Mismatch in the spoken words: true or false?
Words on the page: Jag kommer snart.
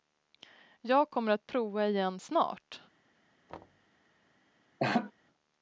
true